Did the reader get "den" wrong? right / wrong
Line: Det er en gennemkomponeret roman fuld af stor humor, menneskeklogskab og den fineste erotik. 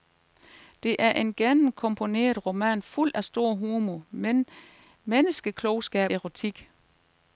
wrong